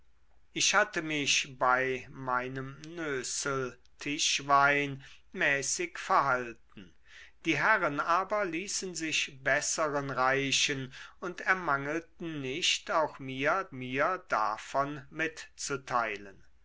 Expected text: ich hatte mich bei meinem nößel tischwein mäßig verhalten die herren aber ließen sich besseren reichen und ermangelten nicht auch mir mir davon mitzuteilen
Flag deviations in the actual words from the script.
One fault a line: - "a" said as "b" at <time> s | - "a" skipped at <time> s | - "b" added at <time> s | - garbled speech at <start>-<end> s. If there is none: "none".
none